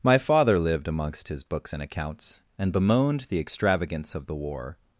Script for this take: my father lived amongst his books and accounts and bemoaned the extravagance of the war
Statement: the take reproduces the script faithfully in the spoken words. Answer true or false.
true